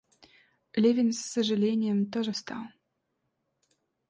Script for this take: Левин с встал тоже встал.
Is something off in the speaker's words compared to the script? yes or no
yes